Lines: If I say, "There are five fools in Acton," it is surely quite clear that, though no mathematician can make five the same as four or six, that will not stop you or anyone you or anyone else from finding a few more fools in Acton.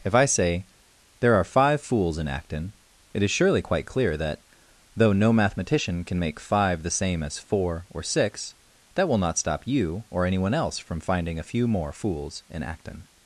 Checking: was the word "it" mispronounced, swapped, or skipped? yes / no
no